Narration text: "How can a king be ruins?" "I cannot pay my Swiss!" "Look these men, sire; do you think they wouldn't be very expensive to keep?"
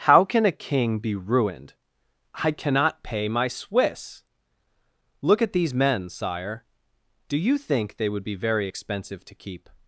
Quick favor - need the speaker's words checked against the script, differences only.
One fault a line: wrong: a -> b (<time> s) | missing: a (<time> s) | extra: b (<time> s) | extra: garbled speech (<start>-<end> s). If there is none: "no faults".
wrong: ruins -> ruined (1.1 s)
extra: at (5.4 s)
wrong: wouldn't -> would (8.1 s)